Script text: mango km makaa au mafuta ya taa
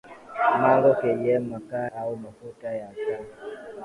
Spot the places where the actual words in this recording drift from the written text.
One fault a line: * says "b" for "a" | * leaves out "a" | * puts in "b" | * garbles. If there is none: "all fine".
all fine